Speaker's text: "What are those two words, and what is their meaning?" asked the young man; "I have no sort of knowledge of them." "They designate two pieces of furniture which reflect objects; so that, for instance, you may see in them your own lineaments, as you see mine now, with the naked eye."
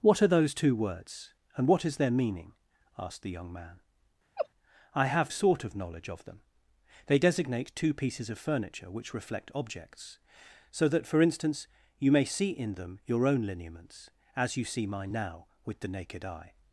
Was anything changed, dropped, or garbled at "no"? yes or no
yes